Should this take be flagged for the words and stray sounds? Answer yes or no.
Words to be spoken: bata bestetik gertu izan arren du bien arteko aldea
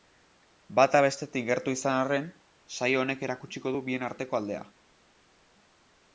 yes